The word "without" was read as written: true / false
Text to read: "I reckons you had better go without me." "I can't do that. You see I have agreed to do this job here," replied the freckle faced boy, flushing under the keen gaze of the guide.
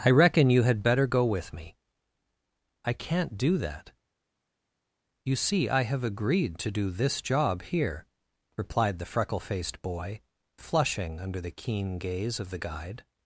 false